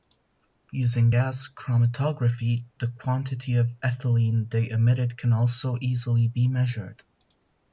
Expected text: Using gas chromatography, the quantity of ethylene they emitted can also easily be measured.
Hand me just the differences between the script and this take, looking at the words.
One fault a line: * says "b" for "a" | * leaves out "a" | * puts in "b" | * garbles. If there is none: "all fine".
all fine